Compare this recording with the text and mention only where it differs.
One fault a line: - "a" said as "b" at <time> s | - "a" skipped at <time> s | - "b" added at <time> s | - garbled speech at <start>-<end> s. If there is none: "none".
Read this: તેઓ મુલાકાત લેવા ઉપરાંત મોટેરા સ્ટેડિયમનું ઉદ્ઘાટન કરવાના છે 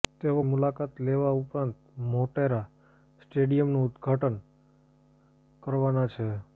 none